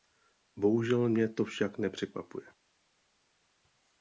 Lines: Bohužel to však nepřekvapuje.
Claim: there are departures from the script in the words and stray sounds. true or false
true